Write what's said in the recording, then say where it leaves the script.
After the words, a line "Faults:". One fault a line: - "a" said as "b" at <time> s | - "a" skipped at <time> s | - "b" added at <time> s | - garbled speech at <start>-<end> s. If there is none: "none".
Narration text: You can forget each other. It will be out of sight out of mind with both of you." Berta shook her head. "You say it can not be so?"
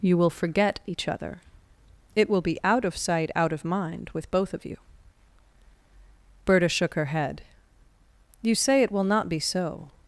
You will forget each other. It will be out of sight out of mind with both of you." Berta shook her head. "You say it will not be so?"
Faults:
- "can" said as "will" at 0.2 s
- "can" said as "will" at 8.9 s